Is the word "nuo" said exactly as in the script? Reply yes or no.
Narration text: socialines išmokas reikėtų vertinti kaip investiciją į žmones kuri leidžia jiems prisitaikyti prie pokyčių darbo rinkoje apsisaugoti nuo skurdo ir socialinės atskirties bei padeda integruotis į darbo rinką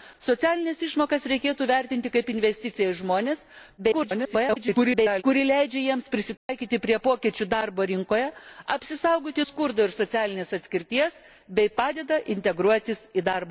no